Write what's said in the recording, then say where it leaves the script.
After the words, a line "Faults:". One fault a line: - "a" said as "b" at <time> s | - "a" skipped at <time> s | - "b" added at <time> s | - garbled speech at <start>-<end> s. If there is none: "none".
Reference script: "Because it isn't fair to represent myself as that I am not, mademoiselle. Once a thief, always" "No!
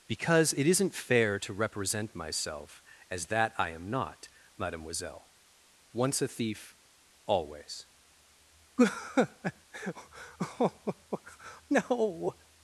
"Because it isn't fair to represent myself as that I am not, mademoiselle. Once a thief, always" "No!
Faults:
none